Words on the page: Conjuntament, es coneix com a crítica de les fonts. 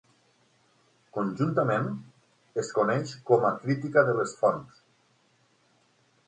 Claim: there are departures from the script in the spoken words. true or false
false